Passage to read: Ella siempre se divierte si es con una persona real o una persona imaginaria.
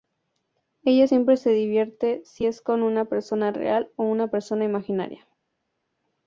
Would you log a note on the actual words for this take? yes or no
no